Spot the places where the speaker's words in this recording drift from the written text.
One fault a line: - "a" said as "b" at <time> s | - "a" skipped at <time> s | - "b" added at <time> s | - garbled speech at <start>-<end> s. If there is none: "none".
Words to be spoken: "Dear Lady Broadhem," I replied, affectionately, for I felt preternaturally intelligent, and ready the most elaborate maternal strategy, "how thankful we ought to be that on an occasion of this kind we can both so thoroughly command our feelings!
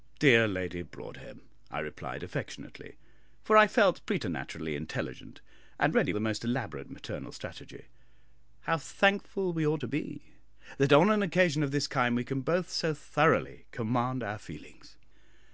none